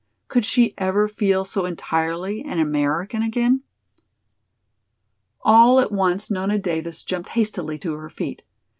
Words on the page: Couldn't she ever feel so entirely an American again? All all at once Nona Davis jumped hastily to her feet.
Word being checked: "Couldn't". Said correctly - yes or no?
no